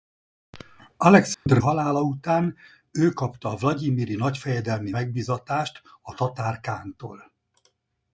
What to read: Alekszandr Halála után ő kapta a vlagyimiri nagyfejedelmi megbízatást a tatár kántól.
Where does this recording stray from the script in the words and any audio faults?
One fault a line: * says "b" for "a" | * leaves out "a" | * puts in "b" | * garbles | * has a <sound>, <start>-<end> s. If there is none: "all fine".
* has a dropout, 1.3-1.5 s